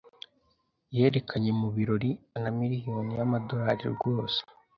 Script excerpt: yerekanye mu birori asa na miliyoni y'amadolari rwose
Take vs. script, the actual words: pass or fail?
fail